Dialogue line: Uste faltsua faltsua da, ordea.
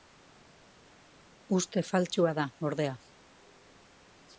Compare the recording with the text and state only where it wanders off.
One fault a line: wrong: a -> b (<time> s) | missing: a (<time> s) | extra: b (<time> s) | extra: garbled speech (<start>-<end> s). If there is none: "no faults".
missing: faltsua (2.3 s)